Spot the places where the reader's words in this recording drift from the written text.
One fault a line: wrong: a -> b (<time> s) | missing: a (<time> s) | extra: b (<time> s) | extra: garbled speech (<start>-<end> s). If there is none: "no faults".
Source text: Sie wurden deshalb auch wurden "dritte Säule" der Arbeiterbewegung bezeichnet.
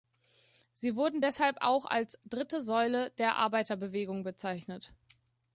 wrong: wurden -> als (1.8 s)